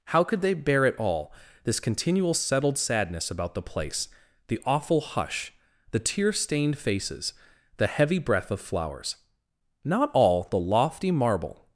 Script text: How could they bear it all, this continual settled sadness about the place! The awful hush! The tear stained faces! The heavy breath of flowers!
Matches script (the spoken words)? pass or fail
fail